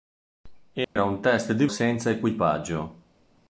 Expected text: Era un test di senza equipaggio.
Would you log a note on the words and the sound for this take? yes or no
yes